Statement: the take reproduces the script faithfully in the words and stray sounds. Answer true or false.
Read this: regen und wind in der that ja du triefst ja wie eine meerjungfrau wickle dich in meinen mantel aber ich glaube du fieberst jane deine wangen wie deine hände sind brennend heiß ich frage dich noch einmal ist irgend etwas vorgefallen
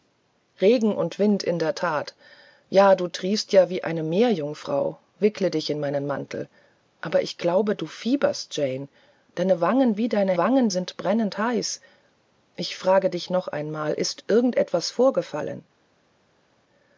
false